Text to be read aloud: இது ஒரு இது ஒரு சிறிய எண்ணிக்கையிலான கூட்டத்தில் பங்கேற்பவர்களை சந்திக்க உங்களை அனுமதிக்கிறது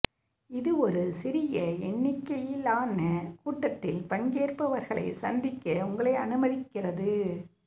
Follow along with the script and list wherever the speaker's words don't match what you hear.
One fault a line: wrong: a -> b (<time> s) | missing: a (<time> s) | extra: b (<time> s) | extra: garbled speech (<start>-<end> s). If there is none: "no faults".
missing: இது ஒரு (1.0 s)